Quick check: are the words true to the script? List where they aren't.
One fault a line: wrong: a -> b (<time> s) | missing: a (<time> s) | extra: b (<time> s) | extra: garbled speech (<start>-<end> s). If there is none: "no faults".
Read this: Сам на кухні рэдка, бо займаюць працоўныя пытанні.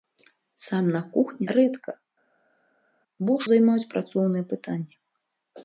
no faults